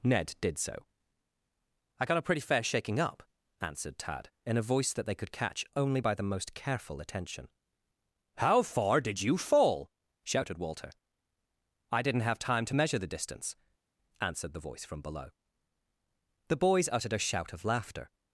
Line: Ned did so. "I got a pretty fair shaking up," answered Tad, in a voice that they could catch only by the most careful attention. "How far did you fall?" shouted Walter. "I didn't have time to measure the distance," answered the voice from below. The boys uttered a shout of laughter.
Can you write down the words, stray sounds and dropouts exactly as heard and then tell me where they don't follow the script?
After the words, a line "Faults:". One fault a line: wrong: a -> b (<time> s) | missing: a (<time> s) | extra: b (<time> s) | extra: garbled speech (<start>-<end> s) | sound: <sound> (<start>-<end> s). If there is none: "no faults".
Ned did so. "I got a pretty fair shaking up," answered Tad, in a voice that they could catch only by the most careful attention. "How far did you fall?" shouted Walter. "I didn't have time to measure the distance," answered the voice from below. The boys uttered a shout of laughter.
Faults:
no faults